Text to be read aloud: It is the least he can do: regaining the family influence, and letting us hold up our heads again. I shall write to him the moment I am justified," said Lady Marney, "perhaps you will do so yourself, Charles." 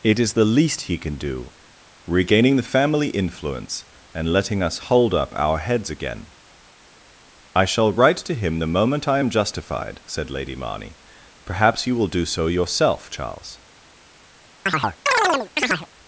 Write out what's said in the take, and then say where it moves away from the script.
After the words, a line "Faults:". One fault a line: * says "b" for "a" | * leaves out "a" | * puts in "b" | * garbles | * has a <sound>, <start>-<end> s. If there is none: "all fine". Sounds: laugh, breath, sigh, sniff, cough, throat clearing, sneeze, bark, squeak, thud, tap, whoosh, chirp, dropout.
It is the least he can do: regaining the family influence, and letting us hold up our heads again. I shall write to him the moment I am justified," said Lady Marney, "perhaps you will do so yourself, Charles."
Faults:
* has a chirp, 14.7-15.9 s